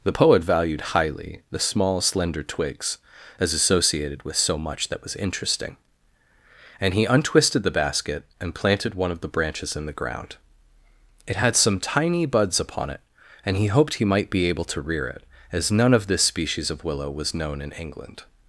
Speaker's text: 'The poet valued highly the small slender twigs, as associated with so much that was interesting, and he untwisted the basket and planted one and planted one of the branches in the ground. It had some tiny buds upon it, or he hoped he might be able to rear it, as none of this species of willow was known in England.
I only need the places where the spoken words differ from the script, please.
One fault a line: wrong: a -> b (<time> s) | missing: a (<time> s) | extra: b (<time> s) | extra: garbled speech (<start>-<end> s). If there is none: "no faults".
missing: and planted one (9.1 s)
wrong: or -> and (13.5 s)